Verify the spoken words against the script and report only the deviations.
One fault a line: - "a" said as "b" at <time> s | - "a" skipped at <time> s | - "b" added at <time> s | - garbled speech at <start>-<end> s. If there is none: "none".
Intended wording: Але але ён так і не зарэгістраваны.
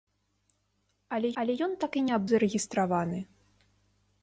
none